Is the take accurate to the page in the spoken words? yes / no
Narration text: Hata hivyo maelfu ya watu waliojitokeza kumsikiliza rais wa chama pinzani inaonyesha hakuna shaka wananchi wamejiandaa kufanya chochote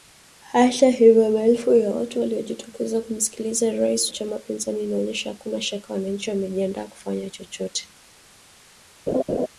no